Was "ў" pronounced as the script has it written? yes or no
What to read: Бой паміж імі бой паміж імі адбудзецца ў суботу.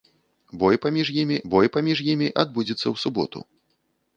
yes